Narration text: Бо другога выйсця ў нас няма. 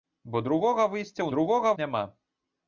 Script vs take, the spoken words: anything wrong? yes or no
yes